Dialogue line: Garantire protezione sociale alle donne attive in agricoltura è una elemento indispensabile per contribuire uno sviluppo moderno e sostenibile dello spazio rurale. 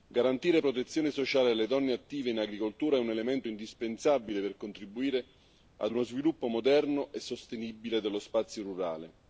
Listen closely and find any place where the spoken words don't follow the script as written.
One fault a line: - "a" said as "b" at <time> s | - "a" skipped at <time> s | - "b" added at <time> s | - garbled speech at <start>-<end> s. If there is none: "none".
- "una" said as "un" at 3.0 s
- "ad" added at 5.8 s